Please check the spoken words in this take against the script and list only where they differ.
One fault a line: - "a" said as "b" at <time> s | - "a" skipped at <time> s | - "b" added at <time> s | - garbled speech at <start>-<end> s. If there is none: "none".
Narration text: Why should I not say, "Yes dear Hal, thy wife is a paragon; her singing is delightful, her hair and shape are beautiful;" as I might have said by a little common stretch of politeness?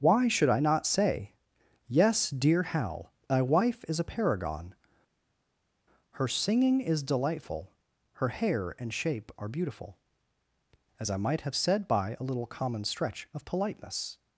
none